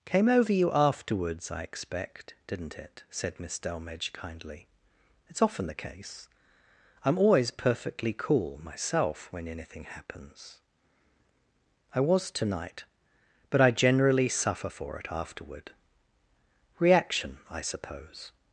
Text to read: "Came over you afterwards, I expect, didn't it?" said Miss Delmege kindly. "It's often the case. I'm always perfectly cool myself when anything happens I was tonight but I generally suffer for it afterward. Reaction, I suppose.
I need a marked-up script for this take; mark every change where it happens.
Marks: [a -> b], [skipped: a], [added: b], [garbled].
"Came over you afterwards, I expect, didn't it?" said Miss Delmege kindly. "It's often the case. I'm always perfectly cool myself when anything happens I was tonight but I generally suffer for it afterward. Reaction, I suppose.